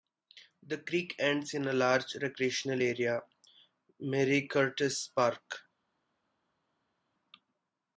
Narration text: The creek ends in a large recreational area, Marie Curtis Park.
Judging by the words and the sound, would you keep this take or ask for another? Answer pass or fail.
pass